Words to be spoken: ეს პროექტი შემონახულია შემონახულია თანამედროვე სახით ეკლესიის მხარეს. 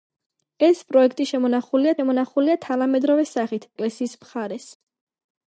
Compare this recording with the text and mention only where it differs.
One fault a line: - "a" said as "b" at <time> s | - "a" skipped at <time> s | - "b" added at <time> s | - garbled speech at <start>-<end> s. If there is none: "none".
none